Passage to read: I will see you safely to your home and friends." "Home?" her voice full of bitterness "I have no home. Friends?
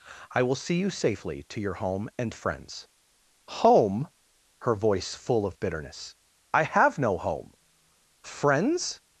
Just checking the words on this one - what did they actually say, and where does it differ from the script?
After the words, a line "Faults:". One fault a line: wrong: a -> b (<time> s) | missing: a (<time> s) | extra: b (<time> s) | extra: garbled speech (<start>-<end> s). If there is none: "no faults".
I will see you safely to your home and friends." "Home?" her voice full of bitterness "I have no home. Friends?
Faults:
no faults